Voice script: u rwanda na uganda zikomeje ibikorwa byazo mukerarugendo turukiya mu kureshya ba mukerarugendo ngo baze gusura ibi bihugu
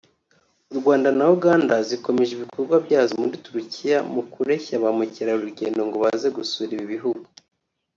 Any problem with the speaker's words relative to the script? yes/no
yes